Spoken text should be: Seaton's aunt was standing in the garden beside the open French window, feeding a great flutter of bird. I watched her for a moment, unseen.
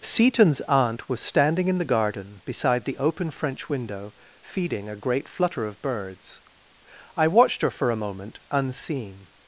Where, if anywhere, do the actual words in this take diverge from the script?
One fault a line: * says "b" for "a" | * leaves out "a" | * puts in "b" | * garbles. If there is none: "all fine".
* says "birds" for "bird"